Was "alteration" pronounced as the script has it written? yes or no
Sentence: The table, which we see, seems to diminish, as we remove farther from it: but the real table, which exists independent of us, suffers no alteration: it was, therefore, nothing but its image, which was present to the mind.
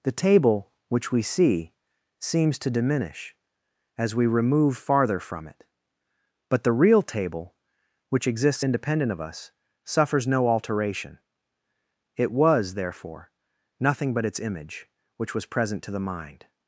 yes